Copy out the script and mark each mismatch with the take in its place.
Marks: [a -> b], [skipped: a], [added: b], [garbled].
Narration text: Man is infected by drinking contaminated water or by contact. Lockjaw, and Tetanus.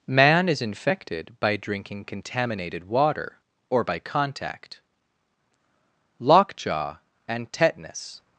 Man is infected by drinking contaminated water or by contact. Lockjaw, and Tetanus.